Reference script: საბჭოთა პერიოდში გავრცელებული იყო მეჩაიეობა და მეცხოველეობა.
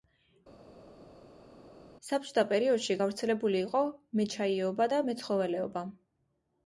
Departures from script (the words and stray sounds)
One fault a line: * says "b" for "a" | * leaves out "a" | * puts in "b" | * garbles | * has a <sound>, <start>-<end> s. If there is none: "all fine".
all fine